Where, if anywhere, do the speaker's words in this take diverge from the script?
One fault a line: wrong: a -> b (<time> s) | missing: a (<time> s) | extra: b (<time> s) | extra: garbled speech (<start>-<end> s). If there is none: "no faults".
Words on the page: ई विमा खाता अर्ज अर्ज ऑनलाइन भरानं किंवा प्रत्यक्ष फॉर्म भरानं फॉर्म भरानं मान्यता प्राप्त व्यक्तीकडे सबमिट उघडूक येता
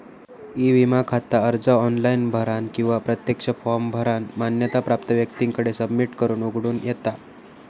missing: अर्ज (1.7 s)
missing: फॉर्म भरानं (4.3 s)
extra: करून (6.2 s)